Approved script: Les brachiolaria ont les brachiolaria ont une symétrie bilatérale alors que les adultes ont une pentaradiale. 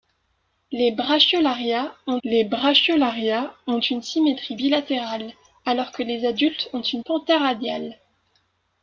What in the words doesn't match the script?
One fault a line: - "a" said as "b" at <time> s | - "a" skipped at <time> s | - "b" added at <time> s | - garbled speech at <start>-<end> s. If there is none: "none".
none